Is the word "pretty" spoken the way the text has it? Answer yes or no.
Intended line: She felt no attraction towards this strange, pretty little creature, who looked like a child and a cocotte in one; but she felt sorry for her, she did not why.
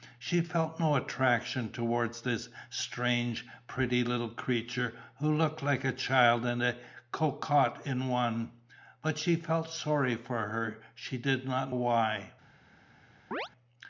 yes